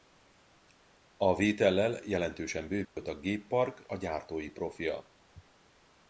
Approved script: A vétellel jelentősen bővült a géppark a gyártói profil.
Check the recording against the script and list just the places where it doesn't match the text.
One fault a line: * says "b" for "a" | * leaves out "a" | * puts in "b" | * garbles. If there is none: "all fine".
all fine